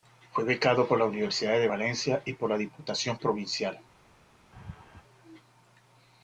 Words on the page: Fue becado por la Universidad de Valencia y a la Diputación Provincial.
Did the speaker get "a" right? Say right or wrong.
wrong